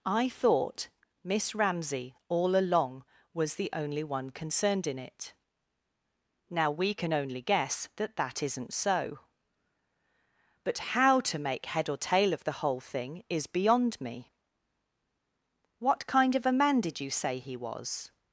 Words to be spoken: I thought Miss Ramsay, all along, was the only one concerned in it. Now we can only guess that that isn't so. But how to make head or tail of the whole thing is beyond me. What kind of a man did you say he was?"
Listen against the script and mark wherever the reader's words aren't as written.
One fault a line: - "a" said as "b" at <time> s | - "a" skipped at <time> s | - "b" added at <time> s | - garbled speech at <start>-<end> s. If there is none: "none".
none